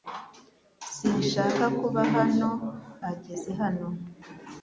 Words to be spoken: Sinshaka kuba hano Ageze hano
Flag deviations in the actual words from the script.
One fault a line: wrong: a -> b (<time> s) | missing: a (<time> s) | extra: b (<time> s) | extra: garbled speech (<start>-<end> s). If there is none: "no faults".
no faults